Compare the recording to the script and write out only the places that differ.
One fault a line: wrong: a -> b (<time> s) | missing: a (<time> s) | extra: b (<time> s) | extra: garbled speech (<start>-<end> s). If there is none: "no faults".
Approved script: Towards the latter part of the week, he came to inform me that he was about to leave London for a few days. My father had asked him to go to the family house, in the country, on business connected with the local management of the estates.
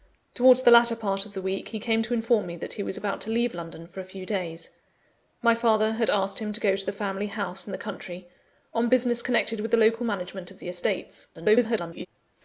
extra: garbled speech (11.3-12.1 s)